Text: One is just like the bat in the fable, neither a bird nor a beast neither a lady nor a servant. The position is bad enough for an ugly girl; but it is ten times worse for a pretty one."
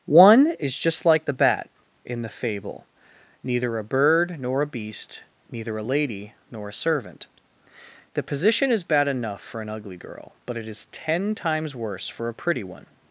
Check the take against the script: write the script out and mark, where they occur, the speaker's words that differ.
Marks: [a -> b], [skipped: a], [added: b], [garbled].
One is just like the bat in the fable, neither a bird nor a beast neither a lady nor a servant. The position is bad enough for an ugly girl; but it is ten times worse for a pretty one."